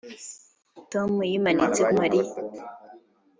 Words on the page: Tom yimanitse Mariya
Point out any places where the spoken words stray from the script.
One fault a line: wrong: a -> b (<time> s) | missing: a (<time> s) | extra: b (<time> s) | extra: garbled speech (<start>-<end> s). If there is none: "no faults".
no faults